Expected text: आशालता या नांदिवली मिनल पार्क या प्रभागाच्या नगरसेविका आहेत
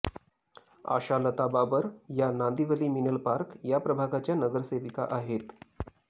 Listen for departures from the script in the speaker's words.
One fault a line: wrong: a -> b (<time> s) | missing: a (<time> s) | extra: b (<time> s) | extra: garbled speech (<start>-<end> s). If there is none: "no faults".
extra: बाबर (1.5 s)